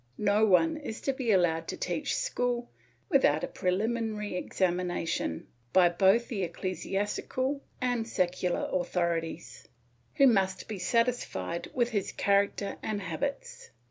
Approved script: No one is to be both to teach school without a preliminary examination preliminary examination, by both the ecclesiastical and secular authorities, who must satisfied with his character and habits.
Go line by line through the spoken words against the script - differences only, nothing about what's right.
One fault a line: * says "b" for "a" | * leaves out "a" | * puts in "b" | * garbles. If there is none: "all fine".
* says "allowed" for "both"
* leaves out "preliminary examination"
* puts in "be"